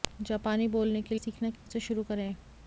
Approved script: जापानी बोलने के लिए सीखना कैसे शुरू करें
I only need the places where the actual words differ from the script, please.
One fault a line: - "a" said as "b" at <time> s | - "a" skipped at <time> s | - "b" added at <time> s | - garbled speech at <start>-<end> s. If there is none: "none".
- "लिए" skipped at 1.1 s